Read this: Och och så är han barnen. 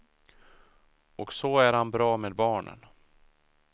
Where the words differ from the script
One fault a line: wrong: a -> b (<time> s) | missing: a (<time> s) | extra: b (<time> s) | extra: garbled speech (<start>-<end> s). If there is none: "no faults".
missing: och (1.3 s)
extra: bra med (1.9 s)